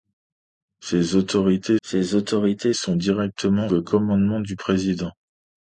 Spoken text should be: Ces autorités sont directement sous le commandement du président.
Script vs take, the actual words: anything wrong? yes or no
yes